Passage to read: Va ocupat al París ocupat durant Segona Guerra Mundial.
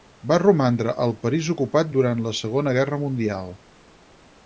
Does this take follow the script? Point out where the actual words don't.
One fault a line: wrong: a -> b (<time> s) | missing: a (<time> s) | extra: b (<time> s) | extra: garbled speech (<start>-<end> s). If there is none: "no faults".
wrong: ocupat -> romandre (0.4 s)
extra: la (2.3 s)